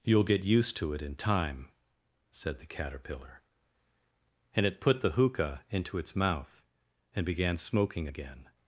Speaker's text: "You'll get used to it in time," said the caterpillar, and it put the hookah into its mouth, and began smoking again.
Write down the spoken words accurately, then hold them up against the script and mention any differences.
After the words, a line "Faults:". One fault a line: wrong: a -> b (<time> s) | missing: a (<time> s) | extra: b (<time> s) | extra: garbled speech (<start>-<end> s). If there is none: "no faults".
"You'll get used to it in time," said the caterpillar, and it put the hookah into its mouth, and began smoking again.
Faults:
no faults